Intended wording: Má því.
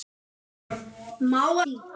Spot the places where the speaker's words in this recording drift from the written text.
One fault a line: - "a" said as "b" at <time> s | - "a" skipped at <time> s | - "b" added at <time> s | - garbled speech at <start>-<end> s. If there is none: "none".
none